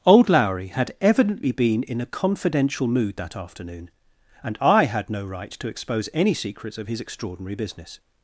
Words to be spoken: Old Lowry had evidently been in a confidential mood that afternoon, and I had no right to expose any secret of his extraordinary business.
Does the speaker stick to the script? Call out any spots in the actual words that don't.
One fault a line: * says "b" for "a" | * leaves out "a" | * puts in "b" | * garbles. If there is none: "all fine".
* says "secrets" for "secret"